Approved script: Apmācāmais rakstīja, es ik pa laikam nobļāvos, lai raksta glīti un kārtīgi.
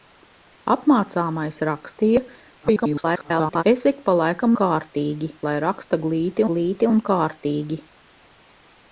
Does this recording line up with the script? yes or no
no